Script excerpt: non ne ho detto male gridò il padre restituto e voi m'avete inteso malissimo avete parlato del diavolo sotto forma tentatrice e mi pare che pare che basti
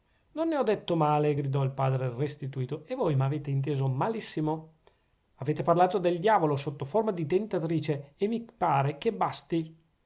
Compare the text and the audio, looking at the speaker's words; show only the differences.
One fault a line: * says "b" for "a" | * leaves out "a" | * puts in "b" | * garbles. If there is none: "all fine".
* puts in "di"
* leaves out "pare che"